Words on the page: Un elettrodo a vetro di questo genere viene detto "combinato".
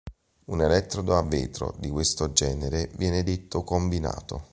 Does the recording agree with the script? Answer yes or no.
yes